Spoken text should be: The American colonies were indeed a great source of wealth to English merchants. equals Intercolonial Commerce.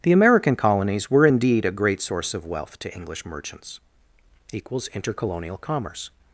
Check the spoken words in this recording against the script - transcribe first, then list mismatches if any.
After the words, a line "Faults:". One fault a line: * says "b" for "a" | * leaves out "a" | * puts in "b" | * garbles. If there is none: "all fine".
The American colonies were indeed a great source of wealth to English merchants. equals Intercolonial Commerce.
Faults:
all fine